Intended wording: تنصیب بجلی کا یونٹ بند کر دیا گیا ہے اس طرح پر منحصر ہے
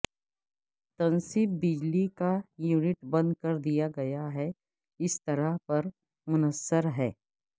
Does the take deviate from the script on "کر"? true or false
false